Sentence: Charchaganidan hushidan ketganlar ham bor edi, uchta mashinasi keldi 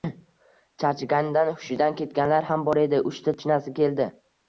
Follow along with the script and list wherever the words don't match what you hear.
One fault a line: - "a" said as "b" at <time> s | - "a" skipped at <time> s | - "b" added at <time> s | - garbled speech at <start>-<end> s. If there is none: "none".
none